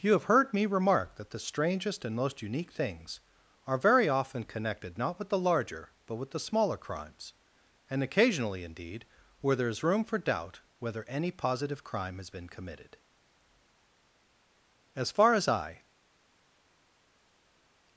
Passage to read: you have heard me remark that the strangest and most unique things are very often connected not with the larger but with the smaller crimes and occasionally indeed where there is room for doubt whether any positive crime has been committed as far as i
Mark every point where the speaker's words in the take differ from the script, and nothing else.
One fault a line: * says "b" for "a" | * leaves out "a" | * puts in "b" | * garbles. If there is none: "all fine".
all fine